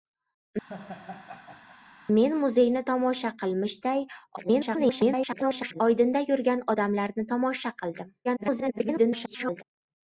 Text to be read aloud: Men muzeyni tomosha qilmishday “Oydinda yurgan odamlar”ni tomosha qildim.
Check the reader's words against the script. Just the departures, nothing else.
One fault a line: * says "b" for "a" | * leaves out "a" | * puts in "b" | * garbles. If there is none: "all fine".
* garbles
* garbles